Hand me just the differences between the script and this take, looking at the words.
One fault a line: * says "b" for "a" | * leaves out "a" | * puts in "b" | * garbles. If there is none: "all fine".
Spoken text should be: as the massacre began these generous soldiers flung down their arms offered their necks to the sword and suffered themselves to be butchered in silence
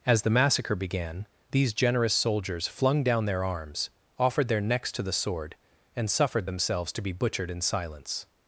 all fine